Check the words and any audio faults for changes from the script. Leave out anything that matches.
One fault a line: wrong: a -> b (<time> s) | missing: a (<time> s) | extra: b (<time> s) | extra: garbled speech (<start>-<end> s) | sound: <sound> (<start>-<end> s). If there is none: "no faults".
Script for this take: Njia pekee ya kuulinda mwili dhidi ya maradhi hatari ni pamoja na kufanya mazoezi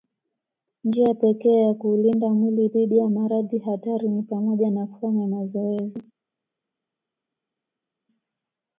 no faults